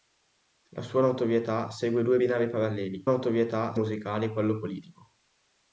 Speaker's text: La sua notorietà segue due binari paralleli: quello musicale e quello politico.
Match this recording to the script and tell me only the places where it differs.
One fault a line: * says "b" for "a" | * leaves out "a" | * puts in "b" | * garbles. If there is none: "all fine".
* says "notorietà" for "quello"